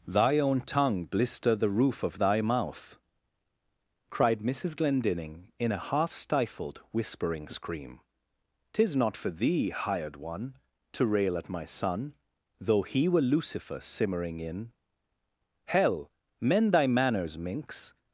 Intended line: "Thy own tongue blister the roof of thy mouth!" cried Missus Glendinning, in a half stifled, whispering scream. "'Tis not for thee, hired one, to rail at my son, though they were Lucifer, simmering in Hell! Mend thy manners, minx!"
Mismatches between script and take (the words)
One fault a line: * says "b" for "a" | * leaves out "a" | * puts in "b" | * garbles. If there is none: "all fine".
* says "he" for "they"